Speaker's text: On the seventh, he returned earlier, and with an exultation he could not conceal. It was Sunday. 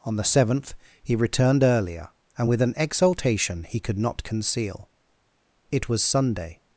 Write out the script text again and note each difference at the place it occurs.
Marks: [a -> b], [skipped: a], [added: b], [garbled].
On the seventh, he returned earlier, and with an exultation he could not conceal. It was Sunday.